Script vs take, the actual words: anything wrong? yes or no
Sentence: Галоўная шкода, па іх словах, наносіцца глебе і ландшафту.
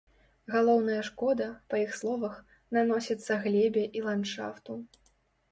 no